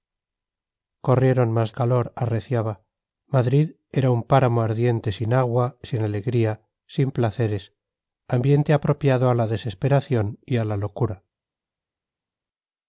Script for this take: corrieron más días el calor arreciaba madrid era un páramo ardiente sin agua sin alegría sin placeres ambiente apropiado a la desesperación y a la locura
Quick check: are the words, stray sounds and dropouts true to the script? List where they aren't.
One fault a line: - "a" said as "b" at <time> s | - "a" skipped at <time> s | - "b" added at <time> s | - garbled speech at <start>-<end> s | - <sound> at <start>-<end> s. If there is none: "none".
- "días el" skipped at 1.7 s